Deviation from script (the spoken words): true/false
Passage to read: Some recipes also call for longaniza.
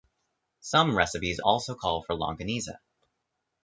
false